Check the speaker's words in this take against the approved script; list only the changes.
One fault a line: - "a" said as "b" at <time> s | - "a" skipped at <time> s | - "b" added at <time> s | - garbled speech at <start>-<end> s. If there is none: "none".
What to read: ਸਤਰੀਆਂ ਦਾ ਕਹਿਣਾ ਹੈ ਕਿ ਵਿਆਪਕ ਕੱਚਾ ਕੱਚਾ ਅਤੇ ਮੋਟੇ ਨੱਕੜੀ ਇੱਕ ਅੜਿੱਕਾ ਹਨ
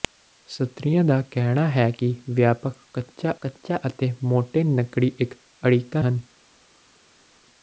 none